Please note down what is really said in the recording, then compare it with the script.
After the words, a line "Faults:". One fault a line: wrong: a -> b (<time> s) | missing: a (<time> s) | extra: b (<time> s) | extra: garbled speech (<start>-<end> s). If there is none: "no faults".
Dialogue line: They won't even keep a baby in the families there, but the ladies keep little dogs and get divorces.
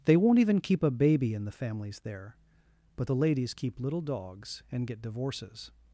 They won't even keep a baby in the families there, but the ladies keep little dogs and get divorces.
Faults:
no faults